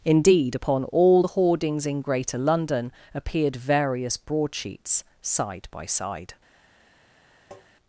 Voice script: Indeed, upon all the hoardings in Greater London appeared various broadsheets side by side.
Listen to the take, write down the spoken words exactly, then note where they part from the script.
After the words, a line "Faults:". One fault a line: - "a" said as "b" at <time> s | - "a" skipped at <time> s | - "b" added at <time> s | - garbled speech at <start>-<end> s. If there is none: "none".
Indeed, upon all the hoardings in Greater London appeared various broadsheets side by side.
Faults:
none